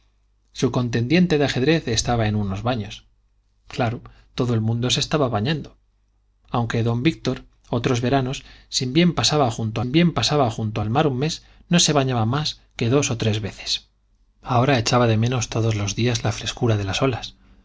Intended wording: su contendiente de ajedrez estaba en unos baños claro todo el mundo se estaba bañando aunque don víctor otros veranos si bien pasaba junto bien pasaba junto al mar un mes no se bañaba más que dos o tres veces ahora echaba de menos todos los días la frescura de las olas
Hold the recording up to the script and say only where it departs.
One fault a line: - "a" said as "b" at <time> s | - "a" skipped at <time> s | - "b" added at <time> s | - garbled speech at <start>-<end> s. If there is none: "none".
none